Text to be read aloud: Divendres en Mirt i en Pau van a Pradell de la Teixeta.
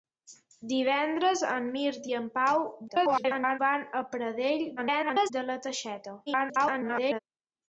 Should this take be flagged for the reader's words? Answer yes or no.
yes